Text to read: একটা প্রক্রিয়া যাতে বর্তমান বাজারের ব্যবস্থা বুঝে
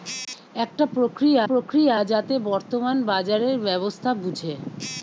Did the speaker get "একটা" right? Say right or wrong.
right